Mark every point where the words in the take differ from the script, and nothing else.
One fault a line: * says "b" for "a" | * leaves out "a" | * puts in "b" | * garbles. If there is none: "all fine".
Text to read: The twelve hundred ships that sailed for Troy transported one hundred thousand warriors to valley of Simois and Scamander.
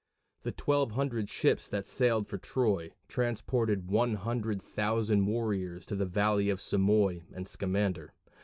* puts in "the"